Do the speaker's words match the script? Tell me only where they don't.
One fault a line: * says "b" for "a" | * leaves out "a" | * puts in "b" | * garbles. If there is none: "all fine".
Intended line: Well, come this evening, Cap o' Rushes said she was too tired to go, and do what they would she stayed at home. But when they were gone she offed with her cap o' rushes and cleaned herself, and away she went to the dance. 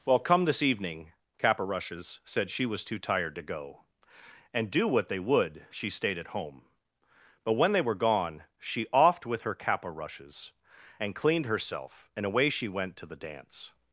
all fine